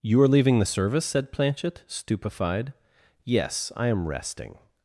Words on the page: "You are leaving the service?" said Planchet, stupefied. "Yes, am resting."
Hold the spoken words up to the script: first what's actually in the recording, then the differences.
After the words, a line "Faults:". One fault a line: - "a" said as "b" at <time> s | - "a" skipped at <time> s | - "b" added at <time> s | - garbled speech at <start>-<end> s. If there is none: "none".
"You are leaving the service?" said Planchet, stupefied. "Yes, I am resting."
Faults:
- "I" added at 3.8 s